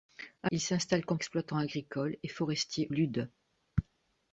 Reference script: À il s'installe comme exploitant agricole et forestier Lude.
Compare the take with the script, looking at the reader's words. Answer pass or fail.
pass